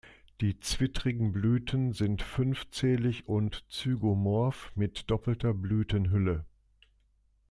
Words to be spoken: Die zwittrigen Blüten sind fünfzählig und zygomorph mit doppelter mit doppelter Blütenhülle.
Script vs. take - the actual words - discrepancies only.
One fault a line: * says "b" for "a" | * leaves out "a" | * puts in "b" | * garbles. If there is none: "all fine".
* leaves out "mit doppelter"